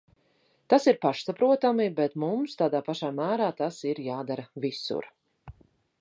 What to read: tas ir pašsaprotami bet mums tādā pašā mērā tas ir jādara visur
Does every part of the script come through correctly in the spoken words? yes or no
yes